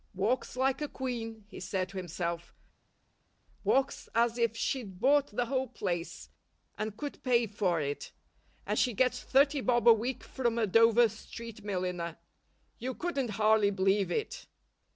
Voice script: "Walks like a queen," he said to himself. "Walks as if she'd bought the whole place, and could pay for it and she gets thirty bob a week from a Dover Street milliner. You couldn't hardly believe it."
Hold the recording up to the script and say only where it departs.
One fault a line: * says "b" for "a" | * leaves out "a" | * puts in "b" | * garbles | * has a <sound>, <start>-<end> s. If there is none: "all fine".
all fine